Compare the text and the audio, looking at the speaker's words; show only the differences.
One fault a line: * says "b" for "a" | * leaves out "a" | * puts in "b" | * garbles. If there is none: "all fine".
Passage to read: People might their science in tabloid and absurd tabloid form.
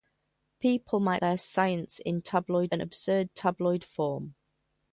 all fine